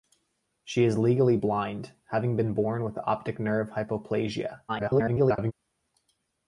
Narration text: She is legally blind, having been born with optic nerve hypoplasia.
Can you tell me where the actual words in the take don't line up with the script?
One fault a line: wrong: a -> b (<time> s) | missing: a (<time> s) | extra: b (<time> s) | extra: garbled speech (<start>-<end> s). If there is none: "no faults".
extra: garbled speech (4.7-5.5 s)